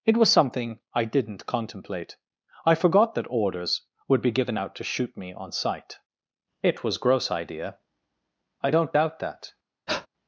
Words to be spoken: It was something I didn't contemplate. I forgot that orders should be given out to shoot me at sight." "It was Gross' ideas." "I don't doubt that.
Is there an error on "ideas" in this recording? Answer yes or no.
yes